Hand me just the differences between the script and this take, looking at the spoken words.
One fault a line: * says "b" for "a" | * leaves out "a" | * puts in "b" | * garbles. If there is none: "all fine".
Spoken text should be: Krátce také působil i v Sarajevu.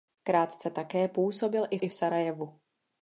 * puts in "i"